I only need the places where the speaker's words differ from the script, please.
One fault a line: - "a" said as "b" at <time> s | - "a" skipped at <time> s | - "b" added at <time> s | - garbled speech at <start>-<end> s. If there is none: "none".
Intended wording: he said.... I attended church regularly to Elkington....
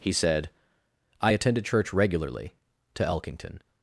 none